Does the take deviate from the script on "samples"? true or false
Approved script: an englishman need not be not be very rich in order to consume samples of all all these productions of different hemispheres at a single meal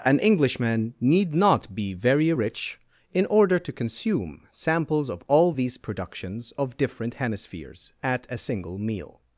false